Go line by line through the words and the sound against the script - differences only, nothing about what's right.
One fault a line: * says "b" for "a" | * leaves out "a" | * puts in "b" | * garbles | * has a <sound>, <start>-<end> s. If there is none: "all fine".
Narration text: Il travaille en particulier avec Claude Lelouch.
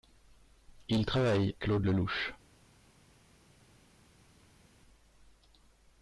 * leaves out "en particulier avec"